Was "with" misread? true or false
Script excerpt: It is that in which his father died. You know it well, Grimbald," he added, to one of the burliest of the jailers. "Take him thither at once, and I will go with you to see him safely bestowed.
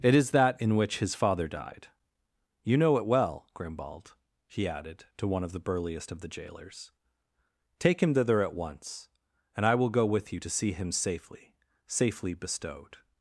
false